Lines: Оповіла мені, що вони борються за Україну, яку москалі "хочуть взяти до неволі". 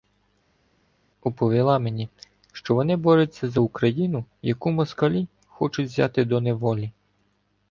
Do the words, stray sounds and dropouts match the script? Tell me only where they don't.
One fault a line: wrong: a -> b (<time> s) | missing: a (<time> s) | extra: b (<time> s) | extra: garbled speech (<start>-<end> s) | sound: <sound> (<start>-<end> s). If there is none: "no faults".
no faults